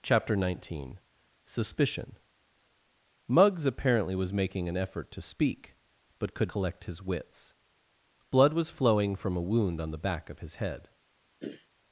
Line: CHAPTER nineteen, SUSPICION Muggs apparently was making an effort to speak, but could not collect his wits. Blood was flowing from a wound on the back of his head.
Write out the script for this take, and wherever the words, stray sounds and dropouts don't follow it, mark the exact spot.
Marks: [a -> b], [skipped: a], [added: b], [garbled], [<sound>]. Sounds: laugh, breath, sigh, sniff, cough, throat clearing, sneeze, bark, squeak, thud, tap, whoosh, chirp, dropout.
CHAPTER nineteen, SUSPICION Muggs apparently was making an effort to speak, but could [skipped: not] collect his wits. Blood was flowing from a wound on the back of his head. [throat clearing]